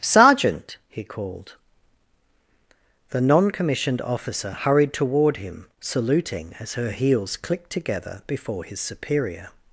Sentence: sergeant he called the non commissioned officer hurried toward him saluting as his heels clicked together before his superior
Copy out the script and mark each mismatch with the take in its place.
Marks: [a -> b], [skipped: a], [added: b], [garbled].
sergeant he called the non commissioned officer hurried toward him saluting as [his -> her] heels clicked together before his superior